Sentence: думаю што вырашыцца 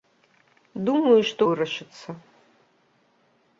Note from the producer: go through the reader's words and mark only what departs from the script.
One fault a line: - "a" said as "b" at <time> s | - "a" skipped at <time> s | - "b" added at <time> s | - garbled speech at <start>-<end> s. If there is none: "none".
none